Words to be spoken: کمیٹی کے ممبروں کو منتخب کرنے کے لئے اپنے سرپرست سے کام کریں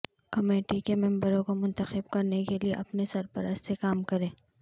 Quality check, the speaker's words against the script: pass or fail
pass